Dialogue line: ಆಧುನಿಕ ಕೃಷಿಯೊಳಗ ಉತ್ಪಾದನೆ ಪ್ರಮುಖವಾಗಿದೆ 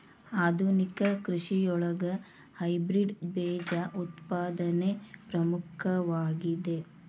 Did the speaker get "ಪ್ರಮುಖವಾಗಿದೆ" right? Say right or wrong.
right